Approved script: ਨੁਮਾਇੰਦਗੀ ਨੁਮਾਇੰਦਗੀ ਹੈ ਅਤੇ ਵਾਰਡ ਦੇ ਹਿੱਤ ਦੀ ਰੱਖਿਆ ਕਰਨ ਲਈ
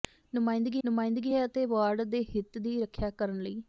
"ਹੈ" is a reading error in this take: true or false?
false